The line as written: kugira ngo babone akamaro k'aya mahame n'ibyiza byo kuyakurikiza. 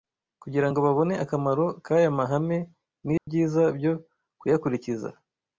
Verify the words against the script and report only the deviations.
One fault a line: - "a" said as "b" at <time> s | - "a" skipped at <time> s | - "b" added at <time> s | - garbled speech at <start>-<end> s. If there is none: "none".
none